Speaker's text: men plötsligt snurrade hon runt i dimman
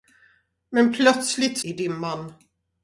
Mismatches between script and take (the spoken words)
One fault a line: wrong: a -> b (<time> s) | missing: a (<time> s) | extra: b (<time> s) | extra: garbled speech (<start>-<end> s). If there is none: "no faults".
missing: snurrade hon runt (1.6 s)